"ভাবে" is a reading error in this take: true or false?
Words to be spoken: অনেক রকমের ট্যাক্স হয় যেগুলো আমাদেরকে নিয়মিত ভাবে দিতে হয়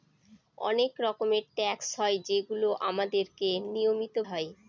true